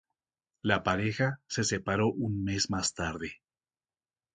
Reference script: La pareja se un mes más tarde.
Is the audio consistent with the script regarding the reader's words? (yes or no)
no